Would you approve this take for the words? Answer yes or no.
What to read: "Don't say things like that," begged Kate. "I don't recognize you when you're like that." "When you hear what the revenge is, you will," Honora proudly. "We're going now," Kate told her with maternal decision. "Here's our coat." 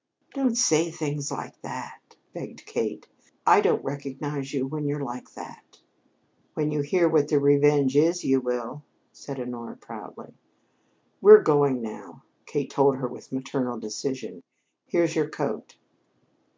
no